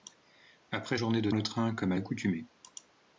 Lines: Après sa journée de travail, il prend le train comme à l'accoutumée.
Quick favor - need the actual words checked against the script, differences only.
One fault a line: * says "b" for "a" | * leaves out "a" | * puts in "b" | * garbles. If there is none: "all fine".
* leaves out "sa"
* leaves out "travail il prend"